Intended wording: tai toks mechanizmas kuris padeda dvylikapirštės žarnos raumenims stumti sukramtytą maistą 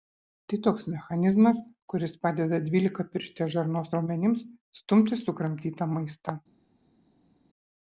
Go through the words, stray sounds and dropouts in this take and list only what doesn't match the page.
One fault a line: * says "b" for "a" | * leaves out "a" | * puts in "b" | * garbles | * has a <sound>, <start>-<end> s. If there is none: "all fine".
all fine